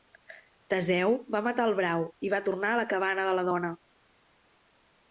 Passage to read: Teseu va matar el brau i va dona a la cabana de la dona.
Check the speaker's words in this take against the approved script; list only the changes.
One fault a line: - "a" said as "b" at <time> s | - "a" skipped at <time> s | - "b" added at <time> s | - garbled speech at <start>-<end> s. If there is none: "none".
- "dona" said as "tornar" at 2.5 s